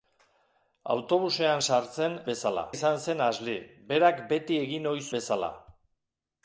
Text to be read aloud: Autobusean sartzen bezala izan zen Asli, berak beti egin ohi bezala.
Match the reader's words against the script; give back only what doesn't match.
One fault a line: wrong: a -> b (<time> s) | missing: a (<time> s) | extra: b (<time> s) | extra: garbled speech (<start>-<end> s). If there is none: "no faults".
no faults